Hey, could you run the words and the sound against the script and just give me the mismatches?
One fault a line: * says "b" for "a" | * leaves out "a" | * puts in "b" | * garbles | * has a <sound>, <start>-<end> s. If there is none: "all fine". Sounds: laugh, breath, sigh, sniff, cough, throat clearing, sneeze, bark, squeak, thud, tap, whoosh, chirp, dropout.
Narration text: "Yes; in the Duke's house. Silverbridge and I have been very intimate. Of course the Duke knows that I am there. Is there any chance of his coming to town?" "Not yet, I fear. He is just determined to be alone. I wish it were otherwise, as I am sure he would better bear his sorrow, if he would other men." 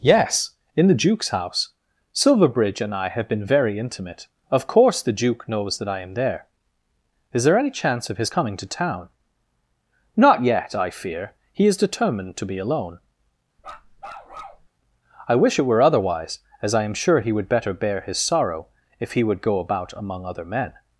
* leaves out "just"
* has a bark, 13.6-14.7 s
* puts in "go about among"